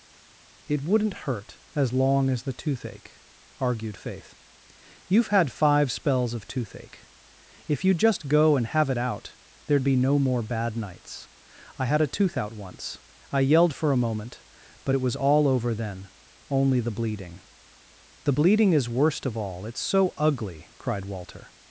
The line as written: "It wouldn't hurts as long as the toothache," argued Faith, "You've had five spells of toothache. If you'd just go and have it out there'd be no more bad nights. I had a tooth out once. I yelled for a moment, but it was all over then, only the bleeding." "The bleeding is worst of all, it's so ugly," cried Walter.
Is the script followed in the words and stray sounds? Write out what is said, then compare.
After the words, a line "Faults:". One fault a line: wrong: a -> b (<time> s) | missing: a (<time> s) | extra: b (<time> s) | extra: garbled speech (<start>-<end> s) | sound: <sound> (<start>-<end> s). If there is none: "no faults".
"It wouldn't hurt as long as the toothache," argued Faith, "You've had five spells of toothache. If you'd just go and have it out there'd be no more bad nights. I had a tooth out once. I yelled for a moment, but it was all over then, only the bleeding." "The bleeding is worst of all, it's so ugly," cried Walter.
Faults:
wrong: hurts -> hurt (1.2 s)